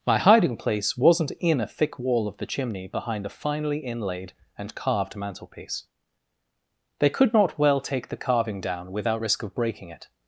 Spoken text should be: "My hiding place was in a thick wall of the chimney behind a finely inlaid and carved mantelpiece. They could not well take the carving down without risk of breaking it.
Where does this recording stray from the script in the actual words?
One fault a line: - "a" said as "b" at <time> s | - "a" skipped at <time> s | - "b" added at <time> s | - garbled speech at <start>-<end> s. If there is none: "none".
- "was" said as "wasn't" at 0.9 s